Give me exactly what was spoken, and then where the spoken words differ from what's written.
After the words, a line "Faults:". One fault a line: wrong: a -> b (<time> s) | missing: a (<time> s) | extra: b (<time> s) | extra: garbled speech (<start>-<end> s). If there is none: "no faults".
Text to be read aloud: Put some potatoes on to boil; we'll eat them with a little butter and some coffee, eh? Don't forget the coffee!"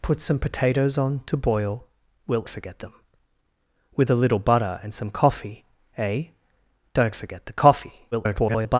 Put some potatoes on to boil; we'll forget them with a little butter and some coffee, eh? Don't forget the coffee!" [garbled]
Faults:
wrong: eat -> forget (2.5 s)
extra: garbled speech (8.1-8.8 s)